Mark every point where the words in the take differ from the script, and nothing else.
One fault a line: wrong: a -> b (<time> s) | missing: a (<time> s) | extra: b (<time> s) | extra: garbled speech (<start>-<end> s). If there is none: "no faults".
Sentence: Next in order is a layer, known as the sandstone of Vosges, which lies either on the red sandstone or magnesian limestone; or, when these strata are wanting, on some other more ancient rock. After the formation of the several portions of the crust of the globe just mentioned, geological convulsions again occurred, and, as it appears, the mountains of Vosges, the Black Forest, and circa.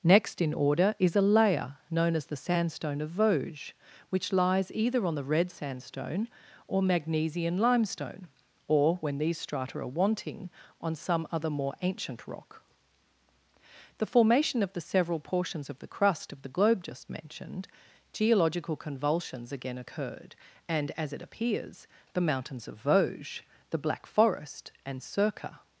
missing: After (12.6 s)